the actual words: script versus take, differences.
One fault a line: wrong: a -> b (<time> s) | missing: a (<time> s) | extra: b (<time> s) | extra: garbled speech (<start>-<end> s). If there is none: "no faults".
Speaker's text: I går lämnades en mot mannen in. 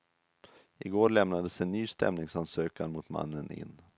extra: ny stämningsansökan (1.7 s)